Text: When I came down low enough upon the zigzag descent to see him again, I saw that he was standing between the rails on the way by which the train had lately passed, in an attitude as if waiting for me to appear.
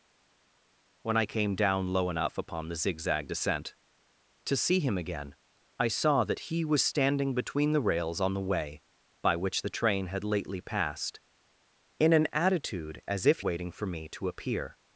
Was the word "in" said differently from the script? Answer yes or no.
no